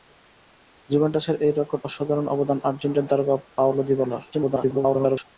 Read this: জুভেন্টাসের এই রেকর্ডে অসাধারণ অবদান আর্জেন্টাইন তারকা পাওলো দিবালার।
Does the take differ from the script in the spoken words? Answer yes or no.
yes